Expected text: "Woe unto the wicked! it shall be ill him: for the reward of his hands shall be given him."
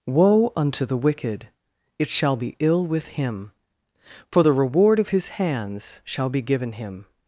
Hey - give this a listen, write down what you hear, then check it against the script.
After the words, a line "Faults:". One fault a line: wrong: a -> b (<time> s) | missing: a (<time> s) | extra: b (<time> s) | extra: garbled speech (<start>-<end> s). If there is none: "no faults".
"Woe unto the wicked! it shall be ill with him: for the reward of his hands shall be given him."
Faults:
extra: with (2.9 s)